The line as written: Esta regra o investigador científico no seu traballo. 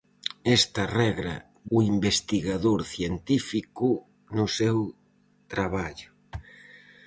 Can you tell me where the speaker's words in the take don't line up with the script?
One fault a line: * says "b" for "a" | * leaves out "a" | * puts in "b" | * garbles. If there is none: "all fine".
all fine